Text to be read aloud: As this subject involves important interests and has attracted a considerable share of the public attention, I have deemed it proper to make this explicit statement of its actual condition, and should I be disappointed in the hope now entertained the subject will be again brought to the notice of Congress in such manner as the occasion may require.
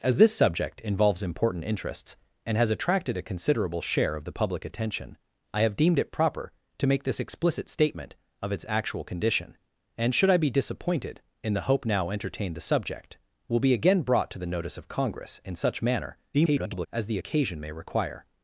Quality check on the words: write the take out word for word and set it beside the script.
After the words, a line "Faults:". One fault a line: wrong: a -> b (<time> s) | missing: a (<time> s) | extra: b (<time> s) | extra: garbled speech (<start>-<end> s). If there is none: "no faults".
As this subject involves important interests and has attracted a considerable share of the public attention, I have deemed it proper to make this explicit statement of its actual condition, and should I be disappointed in the hope now entertained the subject will be again brought to the notice of Congress in such manner [garbled] as the occasion may require.
Faults:
extra: garbled speech (16.3-16.9 s)